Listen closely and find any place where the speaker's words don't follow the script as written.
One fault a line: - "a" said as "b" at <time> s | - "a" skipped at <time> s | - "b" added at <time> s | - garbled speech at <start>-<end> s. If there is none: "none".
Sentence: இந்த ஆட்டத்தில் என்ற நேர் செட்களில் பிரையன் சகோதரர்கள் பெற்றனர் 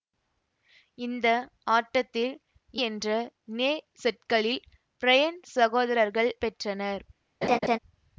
none